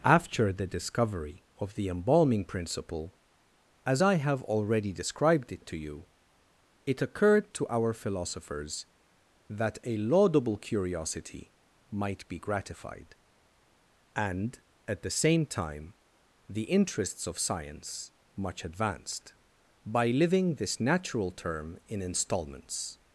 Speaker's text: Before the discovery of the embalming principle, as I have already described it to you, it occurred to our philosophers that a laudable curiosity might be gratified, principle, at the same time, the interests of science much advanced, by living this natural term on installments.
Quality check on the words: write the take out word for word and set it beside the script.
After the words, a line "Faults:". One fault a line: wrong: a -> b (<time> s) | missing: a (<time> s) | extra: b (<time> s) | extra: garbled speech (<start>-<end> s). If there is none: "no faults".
After the discovery of the embalming principle, as I have already described it to you, it occurred to our philosophers that a laudable curiosity might be gratified, and, at the same time, the interests of science much advanced, by living this natural term in installments.
Faults:
wrong: Before -> After (0.0 s)
wrong: principle -> and (14.2 s)
wrong: on -> in (21.9 s)